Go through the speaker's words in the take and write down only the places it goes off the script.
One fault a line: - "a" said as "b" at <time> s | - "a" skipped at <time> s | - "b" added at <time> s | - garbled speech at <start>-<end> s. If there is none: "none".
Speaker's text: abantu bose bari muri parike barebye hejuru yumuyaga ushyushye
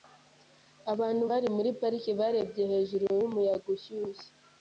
- "bose" skipped at 1.2 s